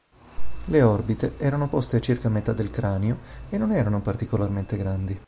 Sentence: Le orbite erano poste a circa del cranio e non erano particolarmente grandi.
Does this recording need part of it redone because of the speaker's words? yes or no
yes